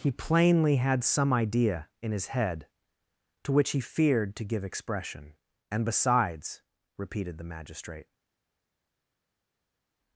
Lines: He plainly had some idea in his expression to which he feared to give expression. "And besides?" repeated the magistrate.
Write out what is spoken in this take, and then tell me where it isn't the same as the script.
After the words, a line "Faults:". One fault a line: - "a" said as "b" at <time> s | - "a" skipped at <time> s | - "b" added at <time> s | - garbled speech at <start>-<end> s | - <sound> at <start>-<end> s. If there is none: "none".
He plainly had some idea in his head to which he feared to give expression. "And besides?" repeated the magistrate.
Faults:
- "expression" said as "head" at 2.3 s